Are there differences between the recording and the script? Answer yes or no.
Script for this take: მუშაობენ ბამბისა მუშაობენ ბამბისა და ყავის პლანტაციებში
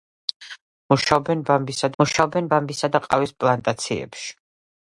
no